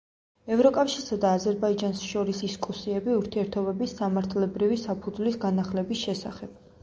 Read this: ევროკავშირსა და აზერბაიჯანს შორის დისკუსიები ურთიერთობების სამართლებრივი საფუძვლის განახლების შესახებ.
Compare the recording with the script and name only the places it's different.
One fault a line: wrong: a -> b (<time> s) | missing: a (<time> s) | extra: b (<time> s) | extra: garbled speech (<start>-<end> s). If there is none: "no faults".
no faults